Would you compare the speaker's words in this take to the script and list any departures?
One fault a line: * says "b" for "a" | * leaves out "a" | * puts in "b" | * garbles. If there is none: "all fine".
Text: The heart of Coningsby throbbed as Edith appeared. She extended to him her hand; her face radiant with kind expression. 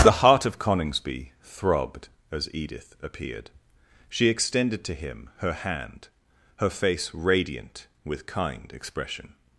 all fine